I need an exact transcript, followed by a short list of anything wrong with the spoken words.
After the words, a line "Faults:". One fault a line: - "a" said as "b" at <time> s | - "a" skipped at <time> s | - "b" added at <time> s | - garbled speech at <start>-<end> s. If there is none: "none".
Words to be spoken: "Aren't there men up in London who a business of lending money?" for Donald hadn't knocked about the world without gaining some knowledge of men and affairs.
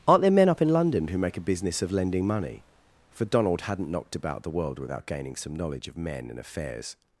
"Aren't there men up in London who make a business of lending money?" for Donald hadn't knocked about the world without gaining some knowledge of men and affairs.
Faults:
- "make" added at 1.2 s